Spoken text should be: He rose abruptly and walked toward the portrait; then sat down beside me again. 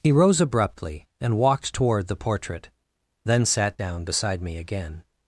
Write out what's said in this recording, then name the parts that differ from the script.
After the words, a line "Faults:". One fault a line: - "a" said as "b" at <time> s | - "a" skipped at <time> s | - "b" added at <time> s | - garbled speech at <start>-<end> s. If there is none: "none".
He rose abruptly and walked toward the portrait; then sat down beside me again.
Faults:
none